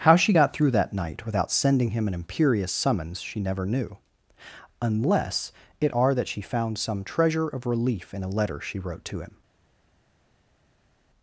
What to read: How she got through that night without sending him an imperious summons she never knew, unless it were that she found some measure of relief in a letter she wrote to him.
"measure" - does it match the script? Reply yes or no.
no